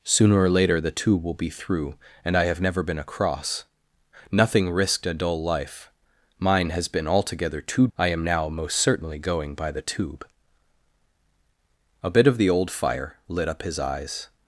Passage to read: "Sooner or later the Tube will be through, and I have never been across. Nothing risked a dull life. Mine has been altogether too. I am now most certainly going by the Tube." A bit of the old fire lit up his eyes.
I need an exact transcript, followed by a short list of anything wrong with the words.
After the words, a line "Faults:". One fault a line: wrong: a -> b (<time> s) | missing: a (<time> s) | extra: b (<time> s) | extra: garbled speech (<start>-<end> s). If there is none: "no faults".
"Sooner or later the Tube will be through, and I have never been across. Nothing risked a dull life. Mine has been altogether too. I am now most certainly going by the Tube." A bit of the old fire lit up his eyes.
Faults:
no faults